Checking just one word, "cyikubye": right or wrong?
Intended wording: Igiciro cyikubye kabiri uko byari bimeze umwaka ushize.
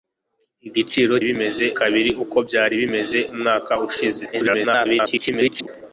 wrong